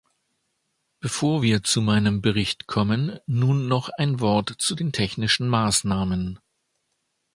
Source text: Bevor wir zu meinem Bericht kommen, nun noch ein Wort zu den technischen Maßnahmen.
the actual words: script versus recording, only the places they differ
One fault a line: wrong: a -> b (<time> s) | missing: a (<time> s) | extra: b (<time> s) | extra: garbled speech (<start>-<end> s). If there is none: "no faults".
no faults